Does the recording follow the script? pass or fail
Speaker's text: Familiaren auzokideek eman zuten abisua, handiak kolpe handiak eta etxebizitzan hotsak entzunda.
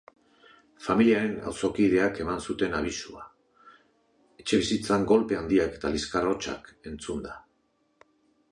fail